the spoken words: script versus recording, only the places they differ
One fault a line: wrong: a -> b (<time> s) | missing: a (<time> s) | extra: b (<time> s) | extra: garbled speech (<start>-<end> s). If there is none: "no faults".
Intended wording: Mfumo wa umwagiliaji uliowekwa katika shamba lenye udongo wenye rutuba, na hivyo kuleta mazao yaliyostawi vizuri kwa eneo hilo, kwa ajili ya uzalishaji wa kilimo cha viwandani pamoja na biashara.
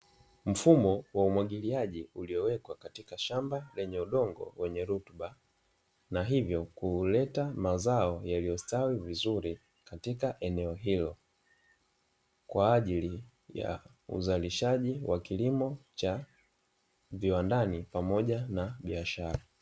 wrong: kwa -> katika (9.8 s)